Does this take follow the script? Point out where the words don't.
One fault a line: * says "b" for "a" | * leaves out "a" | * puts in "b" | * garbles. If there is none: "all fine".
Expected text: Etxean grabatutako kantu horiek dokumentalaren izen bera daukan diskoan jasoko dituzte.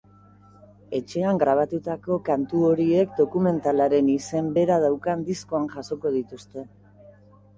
all fine